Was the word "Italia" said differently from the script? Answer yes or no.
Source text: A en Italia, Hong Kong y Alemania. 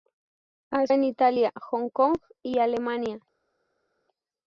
no